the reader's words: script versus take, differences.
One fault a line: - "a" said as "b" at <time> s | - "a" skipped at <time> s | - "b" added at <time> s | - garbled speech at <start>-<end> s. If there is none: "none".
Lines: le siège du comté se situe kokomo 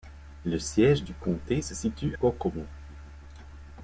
none